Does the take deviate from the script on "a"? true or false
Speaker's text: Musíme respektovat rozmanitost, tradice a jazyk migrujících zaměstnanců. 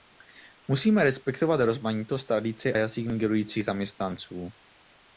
true